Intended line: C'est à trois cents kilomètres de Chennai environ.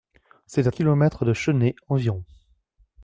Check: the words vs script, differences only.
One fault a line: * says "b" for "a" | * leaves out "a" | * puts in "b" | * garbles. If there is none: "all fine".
* leaves out "trois cents"